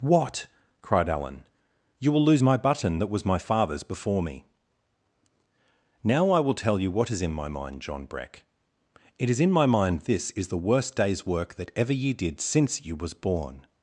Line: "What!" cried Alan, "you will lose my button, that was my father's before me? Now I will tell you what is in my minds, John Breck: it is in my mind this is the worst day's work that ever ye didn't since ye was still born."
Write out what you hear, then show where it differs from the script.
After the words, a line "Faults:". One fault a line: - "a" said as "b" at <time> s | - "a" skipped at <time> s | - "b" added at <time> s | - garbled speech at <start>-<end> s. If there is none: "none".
"What!" cried Alan, "you will lose my button, that was my father's before me? Now I will tell you what is in my mind, John Breck: it is in my mind this is the worst day's work that ever ye did since ye was born."
Faults:
- "minds" said as "mind" at 7.5 s
- "didn't" said as "did" at 12.1 s
- "still" skipped at 13.1 s